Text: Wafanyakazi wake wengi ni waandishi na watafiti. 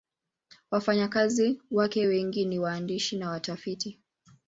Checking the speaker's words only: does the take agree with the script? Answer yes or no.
yes